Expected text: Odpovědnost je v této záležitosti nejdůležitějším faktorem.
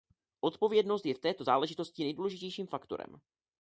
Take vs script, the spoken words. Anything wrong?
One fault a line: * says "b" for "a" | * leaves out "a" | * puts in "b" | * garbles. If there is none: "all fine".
all fine